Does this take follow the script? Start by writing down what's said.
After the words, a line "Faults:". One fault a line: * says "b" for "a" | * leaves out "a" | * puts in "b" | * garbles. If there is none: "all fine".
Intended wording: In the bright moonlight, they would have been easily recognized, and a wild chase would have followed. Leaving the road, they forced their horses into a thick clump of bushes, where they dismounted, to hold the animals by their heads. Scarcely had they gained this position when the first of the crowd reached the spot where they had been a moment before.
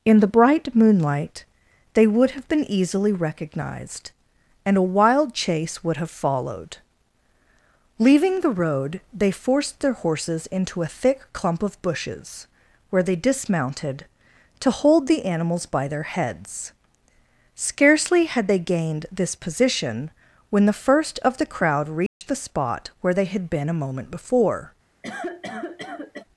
In the bright moonlight, they would have been easily recognized, and a wild chase would have followed. Leaving the road, they forced their horses into a thick clump of bushes, where they dismounted, to hold the animals by their heads. Scarcely had they gained this position when the first of the crowd reached the spot where they had been a moment before.
Faults:
all fine